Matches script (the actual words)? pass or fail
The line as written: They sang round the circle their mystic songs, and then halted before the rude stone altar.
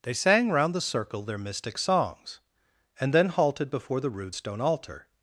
pass